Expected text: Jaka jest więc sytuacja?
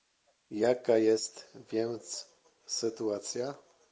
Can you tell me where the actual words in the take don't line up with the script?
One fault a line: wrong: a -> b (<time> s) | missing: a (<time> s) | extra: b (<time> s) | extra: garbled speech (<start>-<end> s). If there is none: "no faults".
no faults